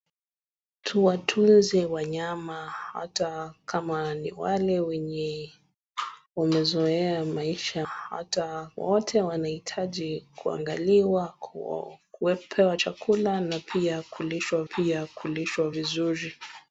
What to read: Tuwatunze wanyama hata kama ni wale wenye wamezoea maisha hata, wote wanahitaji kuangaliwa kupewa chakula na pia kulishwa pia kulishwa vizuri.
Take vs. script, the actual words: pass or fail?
pass